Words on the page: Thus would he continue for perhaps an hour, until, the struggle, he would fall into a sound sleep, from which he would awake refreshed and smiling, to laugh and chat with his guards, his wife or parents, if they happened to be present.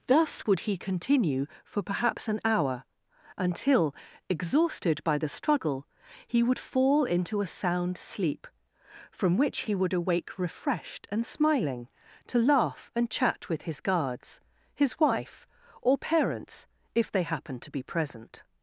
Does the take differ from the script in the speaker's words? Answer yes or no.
yes